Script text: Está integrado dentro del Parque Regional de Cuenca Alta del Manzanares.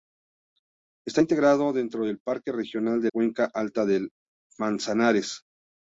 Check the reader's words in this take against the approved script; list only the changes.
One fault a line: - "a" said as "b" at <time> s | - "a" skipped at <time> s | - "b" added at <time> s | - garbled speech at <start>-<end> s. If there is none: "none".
none